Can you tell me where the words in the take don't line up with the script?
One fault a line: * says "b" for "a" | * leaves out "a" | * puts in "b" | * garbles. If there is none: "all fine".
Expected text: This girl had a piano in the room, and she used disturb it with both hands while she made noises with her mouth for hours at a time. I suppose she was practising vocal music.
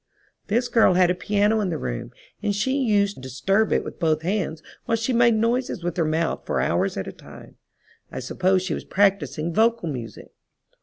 all fine